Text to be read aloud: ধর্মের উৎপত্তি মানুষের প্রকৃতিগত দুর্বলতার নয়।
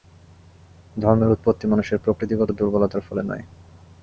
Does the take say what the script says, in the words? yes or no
no